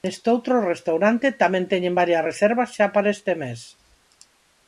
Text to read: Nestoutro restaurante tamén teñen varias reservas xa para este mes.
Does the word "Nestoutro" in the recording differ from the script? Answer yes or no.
no